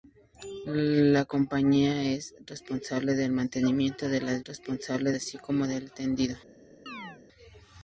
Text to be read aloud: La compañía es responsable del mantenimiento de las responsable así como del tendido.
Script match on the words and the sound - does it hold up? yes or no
no